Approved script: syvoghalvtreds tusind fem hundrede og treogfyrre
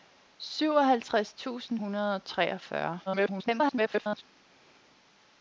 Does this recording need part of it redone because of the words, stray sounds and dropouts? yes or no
yes